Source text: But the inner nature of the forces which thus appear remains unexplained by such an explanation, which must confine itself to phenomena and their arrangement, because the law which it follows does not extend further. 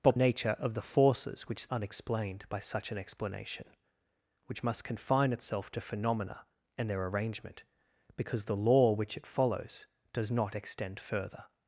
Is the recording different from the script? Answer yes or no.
yes